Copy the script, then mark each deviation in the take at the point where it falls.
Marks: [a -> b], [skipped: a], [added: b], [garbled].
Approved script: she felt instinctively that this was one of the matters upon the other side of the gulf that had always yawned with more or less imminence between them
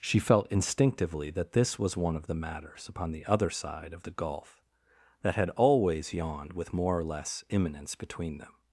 she felt instinctively that this was one of the matters upon the other side of the gulf that had always yawned with more or less imminence between them